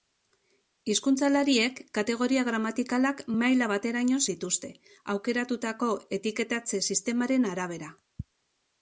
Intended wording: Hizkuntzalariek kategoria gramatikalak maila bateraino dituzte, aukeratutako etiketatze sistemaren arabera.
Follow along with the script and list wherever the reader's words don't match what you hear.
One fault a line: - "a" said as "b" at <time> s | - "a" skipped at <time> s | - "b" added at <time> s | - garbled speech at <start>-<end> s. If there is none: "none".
none